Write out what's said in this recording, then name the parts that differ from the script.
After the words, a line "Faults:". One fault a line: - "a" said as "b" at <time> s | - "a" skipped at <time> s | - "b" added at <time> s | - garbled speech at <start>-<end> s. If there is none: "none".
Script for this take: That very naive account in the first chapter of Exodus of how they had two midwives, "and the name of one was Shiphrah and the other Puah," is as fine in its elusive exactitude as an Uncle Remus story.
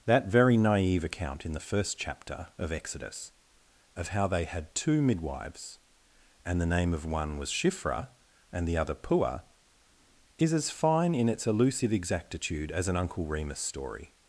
That very naive account in the first chapter of Exodus of how they had two midwives, "and the name of one was Shiphrah and the other Puah," is as fine in its elusive exactitude as an Uncle Remus story.
Faults:
none